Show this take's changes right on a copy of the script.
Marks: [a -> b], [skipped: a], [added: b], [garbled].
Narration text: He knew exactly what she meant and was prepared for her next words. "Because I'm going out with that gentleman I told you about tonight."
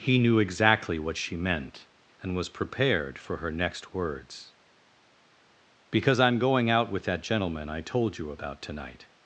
He knew exactly what she meant and was prepared for her next words. "Because I'm going out with that gentleman I told you about tonight."